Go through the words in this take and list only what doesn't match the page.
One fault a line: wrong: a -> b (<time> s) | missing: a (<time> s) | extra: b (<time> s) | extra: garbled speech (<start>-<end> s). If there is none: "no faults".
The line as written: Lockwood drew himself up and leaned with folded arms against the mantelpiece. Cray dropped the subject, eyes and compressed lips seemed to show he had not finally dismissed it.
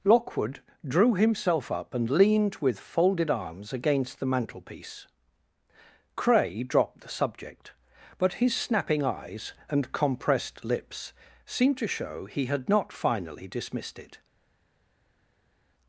extra: but his snapping (8.2 s)